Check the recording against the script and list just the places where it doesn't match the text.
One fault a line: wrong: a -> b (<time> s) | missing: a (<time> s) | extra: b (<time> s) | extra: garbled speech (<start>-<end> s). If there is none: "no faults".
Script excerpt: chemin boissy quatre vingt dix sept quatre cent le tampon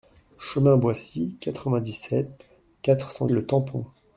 no faults